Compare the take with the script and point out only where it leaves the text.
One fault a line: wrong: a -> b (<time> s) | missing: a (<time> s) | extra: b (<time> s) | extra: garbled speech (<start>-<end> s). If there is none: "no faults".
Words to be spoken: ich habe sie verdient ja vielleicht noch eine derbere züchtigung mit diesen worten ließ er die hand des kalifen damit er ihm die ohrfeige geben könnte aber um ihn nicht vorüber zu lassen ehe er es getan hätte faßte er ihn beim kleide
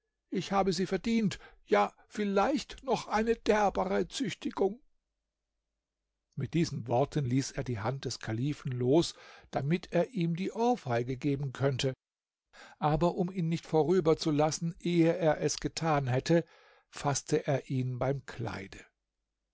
extra: los (8.7 s)